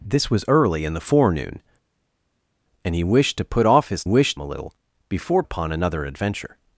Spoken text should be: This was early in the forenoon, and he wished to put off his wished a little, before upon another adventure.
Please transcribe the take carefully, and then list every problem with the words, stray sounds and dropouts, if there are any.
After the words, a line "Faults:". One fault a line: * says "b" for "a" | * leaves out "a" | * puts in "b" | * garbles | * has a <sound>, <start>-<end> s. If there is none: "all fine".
This was early in the forenoon, and he wished to put off his wished a little, before upon another adventure.
Faults:
all fine